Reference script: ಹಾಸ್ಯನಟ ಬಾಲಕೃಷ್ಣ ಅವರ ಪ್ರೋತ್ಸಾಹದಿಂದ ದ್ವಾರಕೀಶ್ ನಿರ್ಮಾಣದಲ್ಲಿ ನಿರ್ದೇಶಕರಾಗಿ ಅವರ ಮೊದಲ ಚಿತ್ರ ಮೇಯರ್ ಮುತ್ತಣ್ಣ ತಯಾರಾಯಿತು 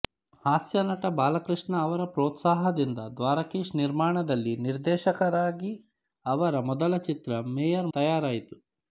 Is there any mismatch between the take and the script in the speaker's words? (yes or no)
yes